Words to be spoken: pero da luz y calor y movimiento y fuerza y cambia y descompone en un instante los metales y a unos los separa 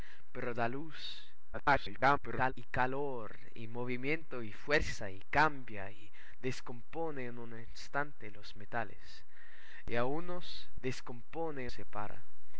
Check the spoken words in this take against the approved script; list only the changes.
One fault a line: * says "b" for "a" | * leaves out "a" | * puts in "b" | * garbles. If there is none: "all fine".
* garbles
* says "descompone" for "los"